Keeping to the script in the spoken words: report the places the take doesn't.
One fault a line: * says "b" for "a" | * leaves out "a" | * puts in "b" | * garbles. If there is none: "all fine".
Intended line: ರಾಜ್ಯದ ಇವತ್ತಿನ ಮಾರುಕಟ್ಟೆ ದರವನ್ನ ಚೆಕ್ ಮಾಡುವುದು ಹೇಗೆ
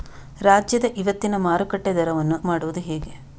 * leaves out "ಚೆಕ್"